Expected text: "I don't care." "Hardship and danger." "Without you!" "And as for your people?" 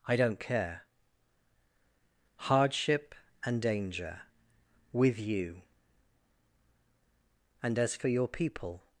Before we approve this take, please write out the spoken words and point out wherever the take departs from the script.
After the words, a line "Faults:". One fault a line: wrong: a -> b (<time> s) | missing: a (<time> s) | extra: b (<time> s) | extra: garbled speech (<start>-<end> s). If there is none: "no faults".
"I don't care." "Hardship and danger." "With you!" "And as for your people?"
Faults:
wrong: Without -> With (4.9 s)